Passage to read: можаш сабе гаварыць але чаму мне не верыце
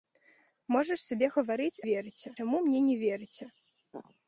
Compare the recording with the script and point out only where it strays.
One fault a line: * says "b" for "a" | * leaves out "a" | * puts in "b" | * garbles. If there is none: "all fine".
* says "верыце" for "але"